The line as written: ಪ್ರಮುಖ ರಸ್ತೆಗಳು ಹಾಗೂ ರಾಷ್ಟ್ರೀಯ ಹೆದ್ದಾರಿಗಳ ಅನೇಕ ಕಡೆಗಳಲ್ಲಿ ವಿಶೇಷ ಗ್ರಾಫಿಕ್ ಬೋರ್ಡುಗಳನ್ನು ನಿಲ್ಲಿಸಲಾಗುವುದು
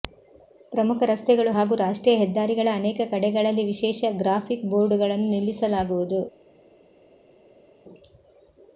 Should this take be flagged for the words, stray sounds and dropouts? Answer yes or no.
no